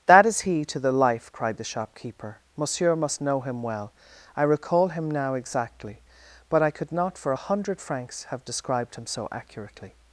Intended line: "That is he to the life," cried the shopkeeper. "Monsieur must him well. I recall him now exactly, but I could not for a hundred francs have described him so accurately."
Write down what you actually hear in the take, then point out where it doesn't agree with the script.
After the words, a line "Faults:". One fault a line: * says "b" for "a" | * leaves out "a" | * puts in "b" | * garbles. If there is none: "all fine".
"That is he to the life," cried the shopkeeper. "Monsieur must know him well. I recall him now exactly, but I could not for a hundred francs have described him so accurately."
Faults:
* puts in "know"